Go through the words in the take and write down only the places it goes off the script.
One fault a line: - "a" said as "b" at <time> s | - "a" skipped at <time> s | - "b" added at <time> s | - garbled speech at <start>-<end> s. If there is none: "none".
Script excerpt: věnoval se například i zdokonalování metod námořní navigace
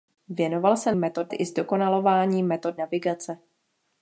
- "například" said as "metod" at 0.9 s
- "námořní" skipped at 2.8 s